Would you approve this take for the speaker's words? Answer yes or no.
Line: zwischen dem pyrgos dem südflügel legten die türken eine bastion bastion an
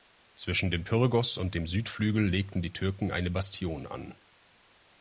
no